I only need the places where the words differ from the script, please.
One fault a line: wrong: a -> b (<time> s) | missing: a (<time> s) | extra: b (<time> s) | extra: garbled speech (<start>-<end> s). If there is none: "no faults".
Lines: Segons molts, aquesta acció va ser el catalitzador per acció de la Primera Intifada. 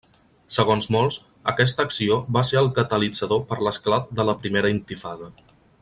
wrong: acció -> l'esclat (3.7 s)